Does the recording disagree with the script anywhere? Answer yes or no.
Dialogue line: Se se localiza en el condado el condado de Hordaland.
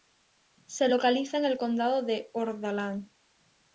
yes